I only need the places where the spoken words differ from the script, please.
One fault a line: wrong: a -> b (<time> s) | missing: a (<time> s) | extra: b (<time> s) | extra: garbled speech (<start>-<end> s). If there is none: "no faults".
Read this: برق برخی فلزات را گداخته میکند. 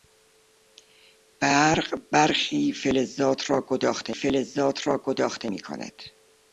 extra: فلزات را گداخته (4.1 s)